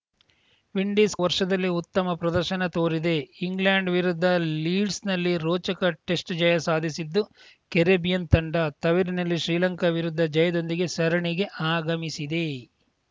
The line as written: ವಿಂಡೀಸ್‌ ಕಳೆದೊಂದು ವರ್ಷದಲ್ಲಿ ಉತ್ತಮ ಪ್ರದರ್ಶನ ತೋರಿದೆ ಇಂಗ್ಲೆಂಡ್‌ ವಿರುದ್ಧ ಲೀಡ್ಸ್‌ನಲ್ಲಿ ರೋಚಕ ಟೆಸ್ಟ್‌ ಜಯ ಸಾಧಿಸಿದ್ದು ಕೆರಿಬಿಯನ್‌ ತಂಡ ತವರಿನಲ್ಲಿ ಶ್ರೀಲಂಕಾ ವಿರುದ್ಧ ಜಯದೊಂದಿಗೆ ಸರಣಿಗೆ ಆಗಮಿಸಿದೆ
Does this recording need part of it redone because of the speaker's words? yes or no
yes